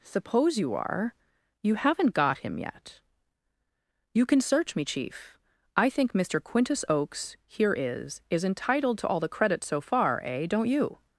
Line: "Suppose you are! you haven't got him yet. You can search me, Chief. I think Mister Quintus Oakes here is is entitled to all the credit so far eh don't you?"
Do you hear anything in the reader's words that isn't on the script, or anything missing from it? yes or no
no